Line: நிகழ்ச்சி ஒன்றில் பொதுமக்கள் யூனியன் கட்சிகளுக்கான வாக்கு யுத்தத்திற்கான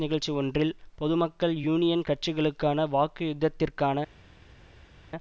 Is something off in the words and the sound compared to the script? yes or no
no